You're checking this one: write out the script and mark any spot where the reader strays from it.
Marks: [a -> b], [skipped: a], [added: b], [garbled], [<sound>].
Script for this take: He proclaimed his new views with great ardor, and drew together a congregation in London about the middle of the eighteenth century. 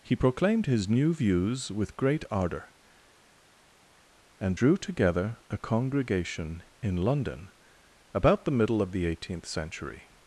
He proclaimed his new views with great ardor, and drew together a congregation in London about the middle of the eighteenth century.